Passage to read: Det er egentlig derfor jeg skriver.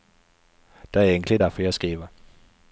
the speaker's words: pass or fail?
pass